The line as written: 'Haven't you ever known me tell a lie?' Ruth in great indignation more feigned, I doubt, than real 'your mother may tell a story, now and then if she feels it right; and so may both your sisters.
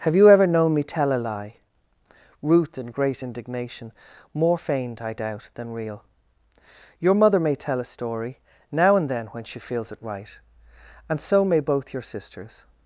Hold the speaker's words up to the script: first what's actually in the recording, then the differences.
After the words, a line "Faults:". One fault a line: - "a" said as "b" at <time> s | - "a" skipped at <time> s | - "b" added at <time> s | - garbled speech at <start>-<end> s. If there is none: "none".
'Have you ever known me tell a lie?' Ruth in great indignation more feigned, I doubt, than real 'your mother may tell a story, now and then when she feels it right; and so may both your sisters.
Faults:
- "Haven't" said as "Have" at 0.0 s
- "if" said as "when" at 9.3 s